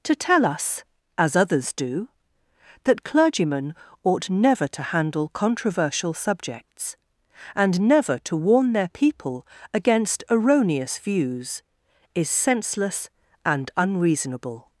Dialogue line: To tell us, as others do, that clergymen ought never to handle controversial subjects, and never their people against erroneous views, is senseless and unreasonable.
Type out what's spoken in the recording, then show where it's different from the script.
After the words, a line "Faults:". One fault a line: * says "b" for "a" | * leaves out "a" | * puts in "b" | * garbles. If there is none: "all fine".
To tell us, as others do, that clergymen ought never to handle controversial subjects, and never to warn their people against erroneous views, is senseless and unreasonable.
Faults:
* puts in "to warn"